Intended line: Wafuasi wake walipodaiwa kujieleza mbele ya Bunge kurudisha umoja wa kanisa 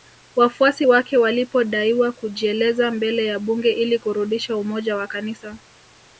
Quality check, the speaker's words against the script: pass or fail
fail